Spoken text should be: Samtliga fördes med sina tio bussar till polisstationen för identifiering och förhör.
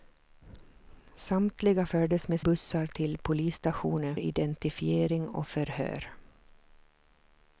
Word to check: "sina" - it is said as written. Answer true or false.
false